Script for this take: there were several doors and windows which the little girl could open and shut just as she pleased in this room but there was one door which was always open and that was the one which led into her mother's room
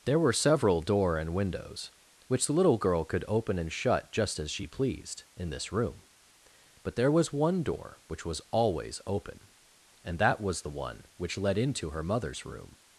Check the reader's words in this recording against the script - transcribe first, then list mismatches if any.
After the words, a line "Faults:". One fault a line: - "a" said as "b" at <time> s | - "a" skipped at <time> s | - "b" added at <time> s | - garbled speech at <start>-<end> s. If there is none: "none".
there were several door and windows which the little girl could open and shut just as she pleased in this room but there was one door which was always open and that was the one which led into her mother's room
Faults:
- "doors" said as "door" at 0.8 s